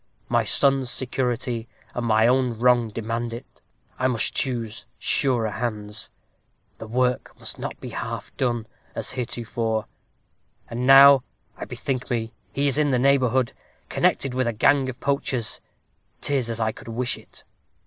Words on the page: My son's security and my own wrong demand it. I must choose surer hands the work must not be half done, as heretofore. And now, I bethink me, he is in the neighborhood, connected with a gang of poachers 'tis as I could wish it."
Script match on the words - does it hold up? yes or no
yes